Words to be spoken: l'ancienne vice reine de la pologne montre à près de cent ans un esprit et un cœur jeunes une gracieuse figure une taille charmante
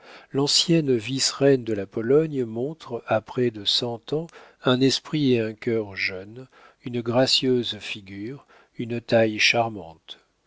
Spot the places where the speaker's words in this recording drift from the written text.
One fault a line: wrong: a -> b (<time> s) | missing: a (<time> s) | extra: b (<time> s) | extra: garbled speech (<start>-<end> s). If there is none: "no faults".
no faults